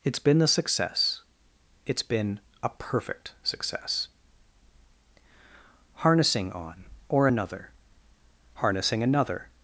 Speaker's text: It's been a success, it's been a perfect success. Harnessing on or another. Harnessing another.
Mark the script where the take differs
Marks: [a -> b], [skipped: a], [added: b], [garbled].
It's been [a -> the] success, it's been a perfect success. Harnessing on or another. Harnessing another.